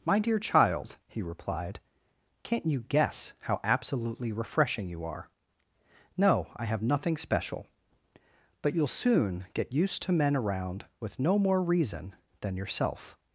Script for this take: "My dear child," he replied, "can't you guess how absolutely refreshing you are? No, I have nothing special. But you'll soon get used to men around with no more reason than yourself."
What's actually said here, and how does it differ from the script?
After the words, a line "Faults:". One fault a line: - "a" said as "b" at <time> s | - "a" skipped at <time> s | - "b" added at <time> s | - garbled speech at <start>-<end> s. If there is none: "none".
"My dear child," he replied, "can't you guess how absolutely refreshing you are? No, I have nothing special. But you'll soon get used to men around with no more reason than yourself."
Faults:
none